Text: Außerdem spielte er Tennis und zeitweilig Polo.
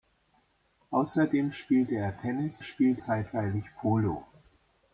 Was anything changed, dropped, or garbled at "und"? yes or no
yes